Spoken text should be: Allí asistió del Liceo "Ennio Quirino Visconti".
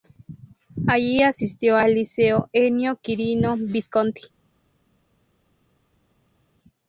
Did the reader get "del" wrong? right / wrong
wrong